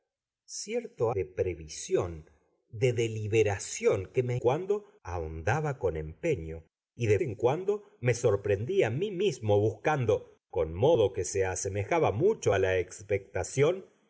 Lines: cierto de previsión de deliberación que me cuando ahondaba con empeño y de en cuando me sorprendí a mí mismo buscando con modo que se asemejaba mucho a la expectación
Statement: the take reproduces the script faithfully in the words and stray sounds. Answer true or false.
true